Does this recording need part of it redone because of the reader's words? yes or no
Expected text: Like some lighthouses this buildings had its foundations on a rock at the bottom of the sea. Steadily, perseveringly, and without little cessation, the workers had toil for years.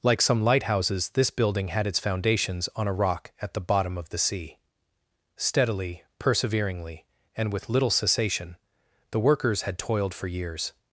yes